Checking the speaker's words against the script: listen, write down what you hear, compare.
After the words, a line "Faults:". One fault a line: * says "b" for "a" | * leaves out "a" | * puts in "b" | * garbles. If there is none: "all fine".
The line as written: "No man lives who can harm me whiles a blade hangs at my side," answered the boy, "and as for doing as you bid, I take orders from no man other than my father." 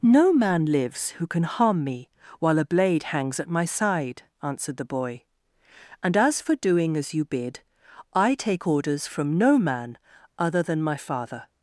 "No man lives who can harm me while a blade hangs at my side," answered the boy, "and as for doing as you bid, I take orders from no man other than my father."
Faults:
* says "while" for "whiles"